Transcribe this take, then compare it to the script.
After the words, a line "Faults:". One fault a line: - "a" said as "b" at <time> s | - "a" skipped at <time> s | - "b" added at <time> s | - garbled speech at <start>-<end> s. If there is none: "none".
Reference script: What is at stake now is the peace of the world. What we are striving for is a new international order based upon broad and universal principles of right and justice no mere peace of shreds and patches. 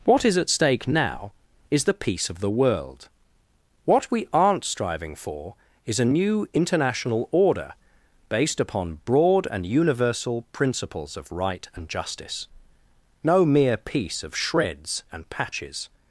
What is at stake now is the peace of the world. What we aren't striving for is a new international order based upon broad and universal principles of right and justice no mere peace of shreds and patches.
Faults:
- "are" said as "aren't" at 4.3 s